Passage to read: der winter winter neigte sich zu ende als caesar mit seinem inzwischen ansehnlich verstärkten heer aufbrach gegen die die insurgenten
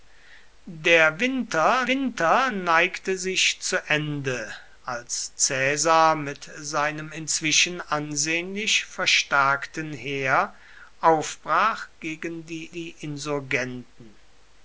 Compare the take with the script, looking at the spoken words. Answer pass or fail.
pass